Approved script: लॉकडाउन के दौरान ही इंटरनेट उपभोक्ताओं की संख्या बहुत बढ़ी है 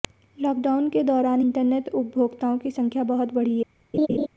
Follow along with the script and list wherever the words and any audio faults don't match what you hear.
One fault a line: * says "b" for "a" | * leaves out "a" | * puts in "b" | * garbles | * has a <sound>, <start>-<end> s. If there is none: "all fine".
* leaves out "ही"
* has a laugh, 3.9-4.3 s